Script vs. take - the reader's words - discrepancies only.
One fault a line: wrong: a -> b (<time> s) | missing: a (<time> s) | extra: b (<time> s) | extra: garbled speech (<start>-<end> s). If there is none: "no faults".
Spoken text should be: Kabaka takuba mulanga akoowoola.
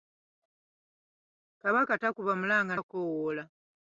no faults